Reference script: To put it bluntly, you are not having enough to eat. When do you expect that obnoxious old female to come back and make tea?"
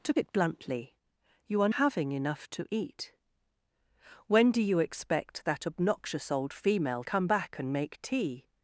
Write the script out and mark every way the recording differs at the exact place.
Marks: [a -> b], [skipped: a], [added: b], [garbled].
To [skipped: put] it bluntly, you are [skipped: not] having enough to eat. When do you expect that obnoxious old female [skipped: to] come back and make tea?"